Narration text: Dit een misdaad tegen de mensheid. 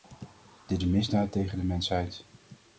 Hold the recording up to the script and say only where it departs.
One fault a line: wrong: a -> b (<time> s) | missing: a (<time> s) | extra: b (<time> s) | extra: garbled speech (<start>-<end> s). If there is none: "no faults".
no faults